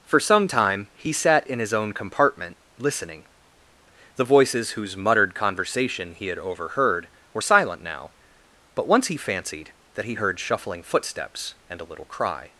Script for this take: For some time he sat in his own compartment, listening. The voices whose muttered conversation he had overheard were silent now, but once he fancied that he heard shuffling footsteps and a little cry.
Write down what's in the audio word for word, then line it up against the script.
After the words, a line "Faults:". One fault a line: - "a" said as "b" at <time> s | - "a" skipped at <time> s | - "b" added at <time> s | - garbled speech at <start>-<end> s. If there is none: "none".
For some time he sat in his own compartment, listening. The voices whose muttered conversation he had overheard were silent now, but once he fancied that he heard shuffling footsteps and a little cry.
Faults:
none